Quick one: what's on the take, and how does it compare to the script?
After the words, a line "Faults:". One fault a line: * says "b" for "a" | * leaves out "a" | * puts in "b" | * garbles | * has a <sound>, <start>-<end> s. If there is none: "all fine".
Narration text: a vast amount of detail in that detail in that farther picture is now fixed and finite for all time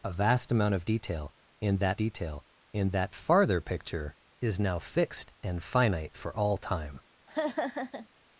a vast amount of detail in that detail in that farther picture is now fixed and finite for all time
Faults:
* has a laugh, 7.3-8.1 s